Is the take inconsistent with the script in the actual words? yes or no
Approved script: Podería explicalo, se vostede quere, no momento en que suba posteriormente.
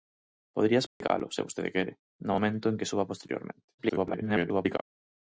yes